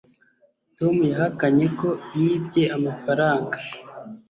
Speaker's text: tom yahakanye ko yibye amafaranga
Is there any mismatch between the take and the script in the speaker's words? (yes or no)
no